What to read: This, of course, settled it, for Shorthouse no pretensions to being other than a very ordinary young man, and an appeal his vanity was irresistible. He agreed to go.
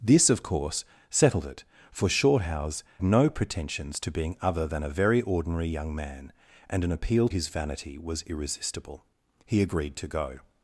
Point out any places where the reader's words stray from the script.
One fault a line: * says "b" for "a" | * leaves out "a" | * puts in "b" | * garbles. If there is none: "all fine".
all fine